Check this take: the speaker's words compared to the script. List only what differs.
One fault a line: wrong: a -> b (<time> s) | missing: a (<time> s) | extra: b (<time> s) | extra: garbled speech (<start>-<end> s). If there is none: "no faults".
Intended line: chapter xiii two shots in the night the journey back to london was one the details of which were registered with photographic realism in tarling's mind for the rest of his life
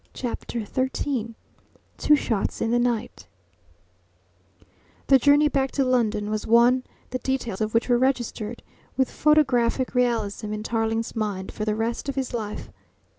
no faults